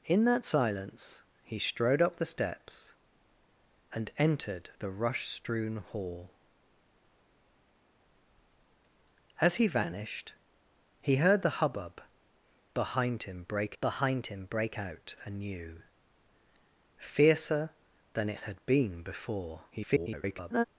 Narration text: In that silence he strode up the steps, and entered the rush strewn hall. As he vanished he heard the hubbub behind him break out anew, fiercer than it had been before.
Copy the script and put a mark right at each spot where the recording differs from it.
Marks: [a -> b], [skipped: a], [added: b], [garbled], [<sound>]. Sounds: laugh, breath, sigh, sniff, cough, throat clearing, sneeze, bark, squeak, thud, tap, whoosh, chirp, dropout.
In that silence he strode up the steps, and entered the rush strewn hall. As he vanished he heard the hubbub behind him break [added: behind him break] out anew, fiercer than it had been before. [garbled]